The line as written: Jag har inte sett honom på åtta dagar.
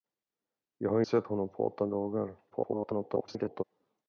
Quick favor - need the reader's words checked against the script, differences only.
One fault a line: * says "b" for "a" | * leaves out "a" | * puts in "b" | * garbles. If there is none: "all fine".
* leaves out "inte"
* garbles